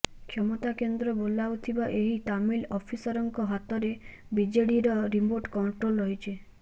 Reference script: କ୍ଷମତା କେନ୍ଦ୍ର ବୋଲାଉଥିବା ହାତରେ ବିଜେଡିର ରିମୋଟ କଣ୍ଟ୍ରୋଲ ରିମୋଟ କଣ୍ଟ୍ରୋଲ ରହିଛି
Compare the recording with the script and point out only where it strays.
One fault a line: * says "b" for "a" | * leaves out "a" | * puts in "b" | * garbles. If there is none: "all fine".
* puts in "ଏହି ତାମିଲ ଅଫିସରଙ୍କ"
* leaves out "ରିମୋଟ କଣ୍ଟ୍ରୋଲ"